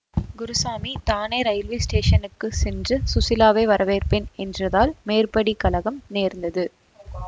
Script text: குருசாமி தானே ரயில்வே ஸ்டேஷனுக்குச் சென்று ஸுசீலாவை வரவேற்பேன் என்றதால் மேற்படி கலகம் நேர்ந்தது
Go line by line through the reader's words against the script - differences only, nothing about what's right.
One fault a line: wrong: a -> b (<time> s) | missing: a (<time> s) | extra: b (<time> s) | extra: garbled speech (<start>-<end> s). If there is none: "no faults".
no faults